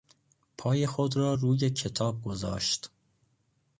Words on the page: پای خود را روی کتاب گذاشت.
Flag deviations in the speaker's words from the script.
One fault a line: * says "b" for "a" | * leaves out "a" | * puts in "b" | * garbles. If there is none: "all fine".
all fine